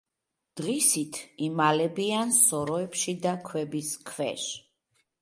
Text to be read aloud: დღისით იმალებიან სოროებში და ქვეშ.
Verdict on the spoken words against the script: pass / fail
fail